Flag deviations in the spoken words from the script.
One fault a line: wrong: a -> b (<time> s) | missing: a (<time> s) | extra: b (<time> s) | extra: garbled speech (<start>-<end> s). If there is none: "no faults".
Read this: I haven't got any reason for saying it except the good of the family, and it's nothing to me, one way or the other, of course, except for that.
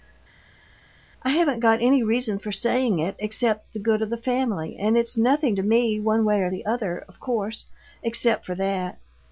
no faults